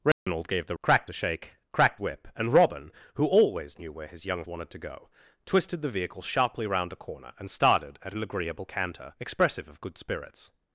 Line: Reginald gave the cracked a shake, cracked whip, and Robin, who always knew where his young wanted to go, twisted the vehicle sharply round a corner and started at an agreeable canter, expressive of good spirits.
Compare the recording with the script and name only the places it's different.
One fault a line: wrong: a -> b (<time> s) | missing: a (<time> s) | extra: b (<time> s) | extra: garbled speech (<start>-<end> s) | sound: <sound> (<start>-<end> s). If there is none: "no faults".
sound: dropout (0.1-0.3 s)